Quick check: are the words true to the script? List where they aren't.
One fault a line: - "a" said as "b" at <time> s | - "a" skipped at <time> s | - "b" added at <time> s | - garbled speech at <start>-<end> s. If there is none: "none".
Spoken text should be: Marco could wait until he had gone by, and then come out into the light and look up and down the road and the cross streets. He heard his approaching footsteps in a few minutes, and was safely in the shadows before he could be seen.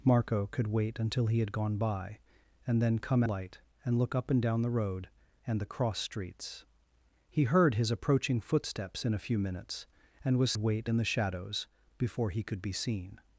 - "out into the" skipped at 3.2 s
- "safely" said as "wait" at 10.6 s